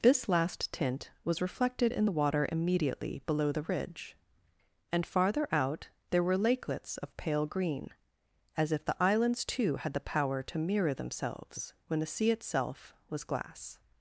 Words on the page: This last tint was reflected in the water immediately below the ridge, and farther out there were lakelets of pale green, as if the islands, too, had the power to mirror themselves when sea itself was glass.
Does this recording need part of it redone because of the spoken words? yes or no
yes